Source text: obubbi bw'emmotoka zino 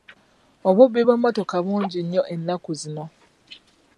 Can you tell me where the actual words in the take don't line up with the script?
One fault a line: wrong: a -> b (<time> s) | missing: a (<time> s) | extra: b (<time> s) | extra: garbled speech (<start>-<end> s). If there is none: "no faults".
extra: bungi nnyo ennaku (1.7 s)